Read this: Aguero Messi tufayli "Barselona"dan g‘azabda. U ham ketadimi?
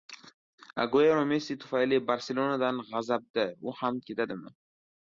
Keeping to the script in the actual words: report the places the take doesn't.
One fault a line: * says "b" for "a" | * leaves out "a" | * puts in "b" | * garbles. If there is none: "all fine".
all fine